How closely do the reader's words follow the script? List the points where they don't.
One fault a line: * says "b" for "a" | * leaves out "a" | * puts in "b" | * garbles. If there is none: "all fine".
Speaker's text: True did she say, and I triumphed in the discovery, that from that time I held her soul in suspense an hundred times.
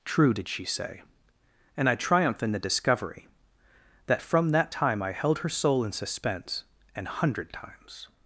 * says "triumph" for "triumphed"